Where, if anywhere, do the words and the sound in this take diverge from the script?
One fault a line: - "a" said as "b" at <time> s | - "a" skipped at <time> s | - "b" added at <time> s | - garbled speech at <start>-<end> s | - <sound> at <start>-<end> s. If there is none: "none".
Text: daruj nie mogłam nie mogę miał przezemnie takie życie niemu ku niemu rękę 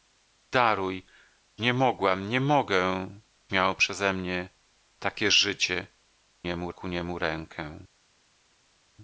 none